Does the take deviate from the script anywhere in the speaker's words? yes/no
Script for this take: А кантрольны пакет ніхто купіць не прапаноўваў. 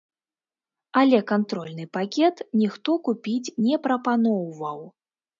yes